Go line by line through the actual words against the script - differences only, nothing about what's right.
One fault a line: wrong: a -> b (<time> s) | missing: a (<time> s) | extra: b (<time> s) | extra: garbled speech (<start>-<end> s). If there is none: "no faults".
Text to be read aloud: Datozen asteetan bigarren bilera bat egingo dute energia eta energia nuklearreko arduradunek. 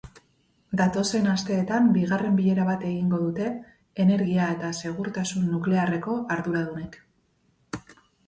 wrong: energia -> segurtasun (4.9 s)